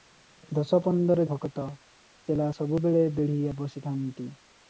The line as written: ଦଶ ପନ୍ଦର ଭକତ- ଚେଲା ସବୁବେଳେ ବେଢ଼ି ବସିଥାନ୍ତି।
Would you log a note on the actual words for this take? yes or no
no